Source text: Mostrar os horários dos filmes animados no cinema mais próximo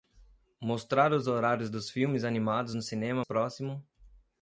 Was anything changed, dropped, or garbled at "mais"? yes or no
yes